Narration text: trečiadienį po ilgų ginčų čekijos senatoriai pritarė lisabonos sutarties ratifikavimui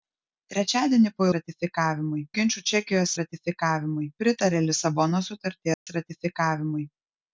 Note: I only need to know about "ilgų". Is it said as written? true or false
false